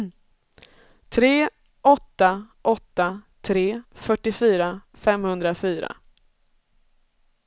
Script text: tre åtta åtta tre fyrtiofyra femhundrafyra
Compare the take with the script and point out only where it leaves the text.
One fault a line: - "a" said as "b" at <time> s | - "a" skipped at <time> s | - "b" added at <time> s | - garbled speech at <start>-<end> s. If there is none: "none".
none